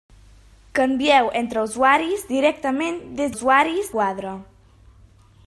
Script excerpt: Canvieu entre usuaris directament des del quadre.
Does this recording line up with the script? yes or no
no